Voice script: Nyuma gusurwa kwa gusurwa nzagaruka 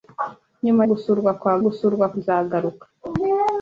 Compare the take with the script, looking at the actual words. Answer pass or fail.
pass